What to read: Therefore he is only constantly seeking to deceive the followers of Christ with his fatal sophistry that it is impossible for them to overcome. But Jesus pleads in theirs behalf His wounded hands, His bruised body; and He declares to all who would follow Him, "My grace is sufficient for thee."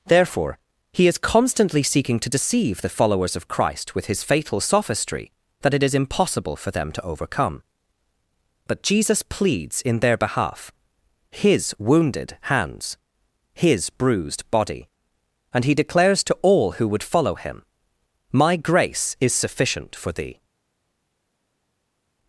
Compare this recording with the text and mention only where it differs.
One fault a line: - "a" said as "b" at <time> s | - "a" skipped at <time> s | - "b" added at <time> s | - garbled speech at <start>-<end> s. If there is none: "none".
- "only" skipped at 1.2 s
- "theirs" said as "their" at 10.0 s